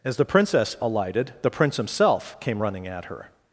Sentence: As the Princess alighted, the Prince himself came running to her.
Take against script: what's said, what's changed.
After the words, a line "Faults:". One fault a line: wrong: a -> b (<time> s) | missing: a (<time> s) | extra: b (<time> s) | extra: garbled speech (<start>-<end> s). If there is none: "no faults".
As the Princess alighted, the Prince himself came running at her.
Faults:
wrong: to -> at (2.9 s)